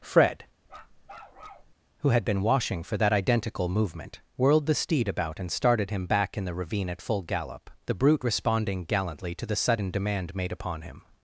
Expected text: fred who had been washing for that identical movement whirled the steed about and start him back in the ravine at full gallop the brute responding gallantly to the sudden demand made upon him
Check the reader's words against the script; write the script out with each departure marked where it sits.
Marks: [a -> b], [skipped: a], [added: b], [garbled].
fred who had been washing for that identical movement whirled the steed about and [start -> started] him back in the ravine at full gallop the brute responding gallantly to the sudden demand made upon him